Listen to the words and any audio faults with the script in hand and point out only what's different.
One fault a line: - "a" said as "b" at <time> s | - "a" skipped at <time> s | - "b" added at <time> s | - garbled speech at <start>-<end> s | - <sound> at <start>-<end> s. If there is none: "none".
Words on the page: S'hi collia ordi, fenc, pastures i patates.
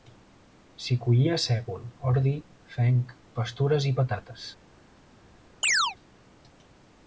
- "sègol" added at 1.4 s
- chirp at 5.6-6.0 s